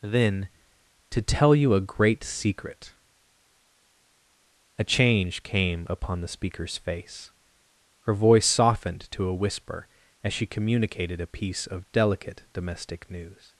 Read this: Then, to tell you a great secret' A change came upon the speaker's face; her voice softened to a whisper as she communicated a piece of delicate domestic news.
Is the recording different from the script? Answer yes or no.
no